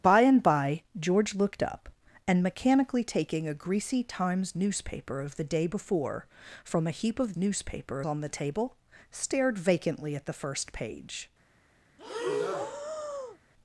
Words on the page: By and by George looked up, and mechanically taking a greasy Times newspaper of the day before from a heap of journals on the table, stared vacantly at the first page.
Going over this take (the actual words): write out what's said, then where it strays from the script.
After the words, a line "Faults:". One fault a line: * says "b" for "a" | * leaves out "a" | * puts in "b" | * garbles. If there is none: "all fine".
By and by George looked up, and mechanically taking a greasy Times newspaper of the day before from a heap of newspaper on the table, stared vacantly at the first page.
Faults:
* says "newspaper" for "journals"